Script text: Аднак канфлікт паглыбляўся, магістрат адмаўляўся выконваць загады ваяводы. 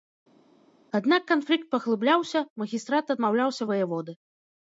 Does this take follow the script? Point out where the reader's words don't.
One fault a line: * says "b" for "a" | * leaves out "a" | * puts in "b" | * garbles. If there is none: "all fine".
* leaves out "выконваць загады"